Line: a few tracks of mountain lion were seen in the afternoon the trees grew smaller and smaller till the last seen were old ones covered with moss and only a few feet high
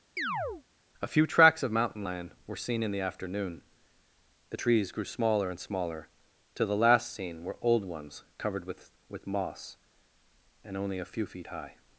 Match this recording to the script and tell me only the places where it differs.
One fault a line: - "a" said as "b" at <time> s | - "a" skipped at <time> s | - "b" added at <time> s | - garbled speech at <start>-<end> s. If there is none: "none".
- "with" added at 9.1 s